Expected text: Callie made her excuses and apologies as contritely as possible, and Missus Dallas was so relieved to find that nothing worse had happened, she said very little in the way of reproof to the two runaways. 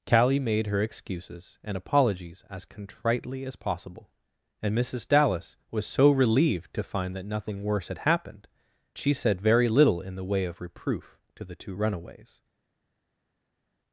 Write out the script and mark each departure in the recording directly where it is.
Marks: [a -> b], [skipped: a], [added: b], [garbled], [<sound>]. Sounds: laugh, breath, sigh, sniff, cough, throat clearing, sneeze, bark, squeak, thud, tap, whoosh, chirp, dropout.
Callie made her excuses and apologies as contritely as possible, and Missus Dallas was so relieved to find that nothing worse had happened, she said very little in the way of reproof to the two runaways.